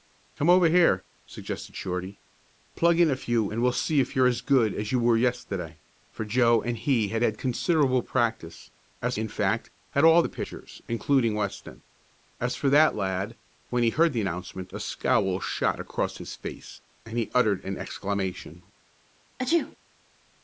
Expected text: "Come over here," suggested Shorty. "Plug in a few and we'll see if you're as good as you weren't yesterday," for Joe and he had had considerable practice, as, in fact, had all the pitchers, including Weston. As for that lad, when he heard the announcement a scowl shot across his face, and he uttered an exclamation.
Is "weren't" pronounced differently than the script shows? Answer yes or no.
yes